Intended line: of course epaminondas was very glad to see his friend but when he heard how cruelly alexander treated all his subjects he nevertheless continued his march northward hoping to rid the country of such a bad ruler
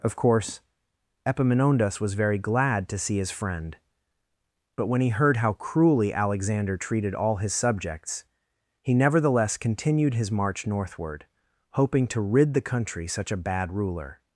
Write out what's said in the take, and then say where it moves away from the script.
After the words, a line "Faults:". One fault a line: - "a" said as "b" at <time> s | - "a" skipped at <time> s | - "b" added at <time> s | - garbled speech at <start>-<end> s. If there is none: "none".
of course epaminondas was very glad to see his friend but when he heard how cruelly alexander treated all his subjects he nevertheless continued his march northward hoping to rid the country such a bad ruler
Faults:
- "of" skipped at 13.1 s